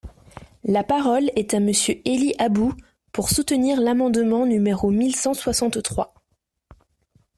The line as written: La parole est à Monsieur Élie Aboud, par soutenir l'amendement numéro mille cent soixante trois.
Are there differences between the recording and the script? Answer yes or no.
yes